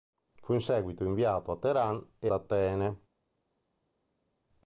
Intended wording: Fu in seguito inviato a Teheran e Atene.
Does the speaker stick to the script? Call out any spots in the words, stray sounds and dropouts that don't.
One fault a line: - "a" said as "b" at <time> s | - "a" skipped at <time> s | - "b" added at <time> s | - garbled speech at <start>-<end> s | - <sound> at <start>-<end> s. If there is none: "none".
none